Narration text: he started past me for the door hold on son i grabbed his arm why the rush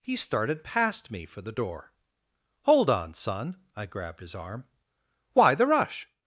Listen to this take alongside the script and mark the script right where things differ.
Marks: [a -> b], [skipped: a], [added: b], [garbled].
he started past me for the door hold on son i grabbed his arm why the rush